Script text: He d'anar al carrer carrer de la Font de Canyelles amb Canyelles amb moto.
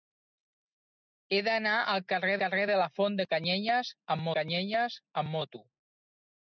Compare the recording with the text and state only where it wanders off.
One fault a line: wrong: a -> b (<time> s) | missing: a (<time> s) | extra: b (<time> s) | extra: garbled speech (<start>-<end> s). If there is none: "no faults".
no faults